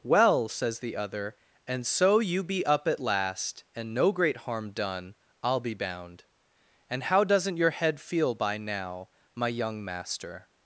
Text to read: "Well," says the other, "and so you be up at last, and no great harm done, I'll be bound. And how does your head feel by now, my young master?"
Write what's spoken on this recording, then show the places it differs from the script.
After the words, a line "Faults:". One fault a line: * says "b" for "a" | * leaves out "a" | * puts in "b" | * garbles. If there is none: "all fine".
"Well," says the other, "and so you be up at last, and no great harm done, I'll be bound. And how doesn't your head feel by now, my young master?"
Faults:
* says "doesn't" for "does"